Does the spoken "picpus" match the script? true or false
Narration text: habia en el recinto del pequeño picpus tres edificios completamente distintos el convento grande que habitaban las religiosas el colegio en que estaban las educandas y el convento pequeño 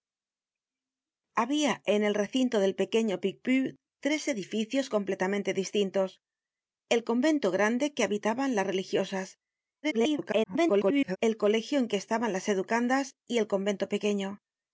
true